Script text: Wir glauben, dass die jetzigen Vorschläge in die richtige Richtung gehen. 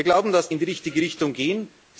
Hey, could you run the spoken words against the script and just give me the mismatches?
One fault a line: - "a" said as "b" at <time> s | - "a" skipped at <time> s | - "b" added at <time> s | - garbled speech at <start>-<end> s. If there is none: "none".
- "die jetzigen Vorschläge" skipped at 0.5 s